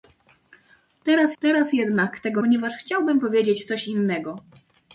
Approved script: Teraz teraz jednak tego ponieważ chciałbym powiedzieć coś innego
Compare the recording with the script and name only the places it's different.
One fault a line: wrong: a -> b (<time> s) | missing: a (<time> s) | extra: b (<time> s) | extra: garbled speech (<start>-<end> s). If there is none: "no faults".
no faults